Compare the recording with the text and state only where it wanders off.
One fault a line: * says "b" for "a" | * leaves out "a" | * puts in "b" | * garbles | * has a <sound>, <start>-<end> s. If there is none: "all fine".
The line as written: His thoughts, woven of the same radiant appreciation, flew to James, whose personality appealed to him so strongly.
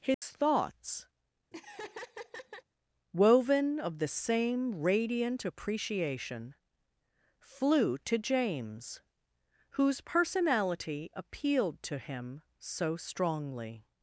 * has a dropout, 0.1-0.2 s
* has a laugh, 1.5-2.6 s